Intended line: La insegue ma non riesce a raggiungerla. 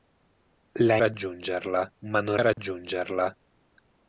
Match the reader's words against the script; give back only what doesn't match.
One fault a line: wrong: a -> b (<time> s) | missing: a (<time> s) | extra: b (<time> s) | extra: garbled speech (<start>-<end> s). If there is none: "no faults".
wrong: insegue -> raggiungerla (1.0 s)
missing: riesce (2.4 s)